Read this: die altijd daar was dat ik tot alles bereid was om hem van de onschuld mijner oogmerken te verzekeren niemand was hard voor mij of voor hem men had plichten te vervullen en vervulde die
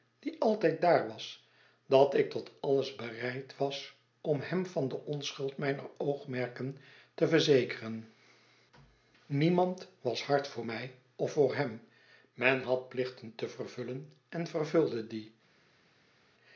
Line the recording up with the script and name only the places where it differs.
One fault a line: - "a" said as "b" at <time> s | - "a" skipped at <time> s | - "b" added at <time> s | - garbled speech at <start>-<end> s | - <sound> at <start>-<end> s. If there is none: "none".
none